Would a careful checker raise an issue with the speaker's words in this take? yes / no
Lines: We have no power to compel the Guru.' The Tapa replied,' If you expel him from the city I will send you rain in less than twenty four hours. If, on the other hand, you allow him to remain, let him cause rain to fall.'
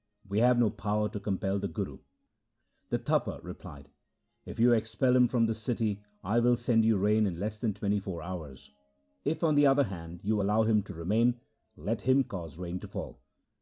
no